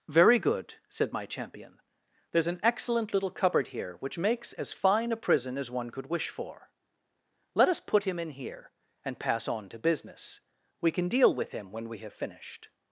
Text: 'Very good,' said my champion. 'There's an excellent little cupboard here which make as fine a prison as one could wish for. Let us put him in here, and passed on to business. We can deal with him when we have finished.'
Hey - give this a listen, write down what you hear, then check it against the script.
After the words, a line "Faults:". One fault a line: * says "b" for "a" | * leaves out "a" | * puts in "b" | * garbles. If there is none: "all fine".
'Very good,' said my champion. 'There's an excellent little cupboard here which makes as fine a prison as one could wish for. Let us put him in here, and pass on to business. We can deal with him when we have finished.'
Faults:
* says "makes" for "make"
* says "pass" for "passed"